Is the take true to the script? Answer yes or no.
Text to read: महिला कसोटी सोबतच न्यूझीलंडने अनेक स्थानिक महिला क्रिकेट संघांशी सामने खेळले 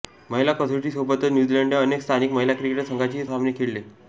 yes